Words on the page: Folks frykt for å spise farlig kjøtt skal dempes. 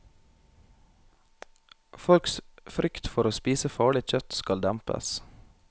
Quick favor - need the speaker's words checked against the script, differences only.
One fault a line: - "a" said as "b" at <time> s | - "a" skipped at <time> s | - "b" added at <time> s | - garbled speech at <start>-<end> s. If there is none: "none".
none